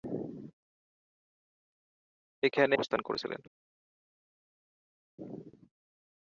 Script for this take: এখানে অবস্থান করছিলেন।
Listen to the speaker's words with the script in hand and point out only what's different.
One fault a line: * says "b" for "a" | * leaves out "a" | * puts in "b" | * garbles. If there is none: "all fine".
all fine